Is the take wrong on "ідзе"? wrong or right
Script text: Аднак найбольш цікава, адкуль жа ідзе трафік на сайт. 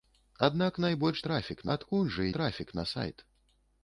wrong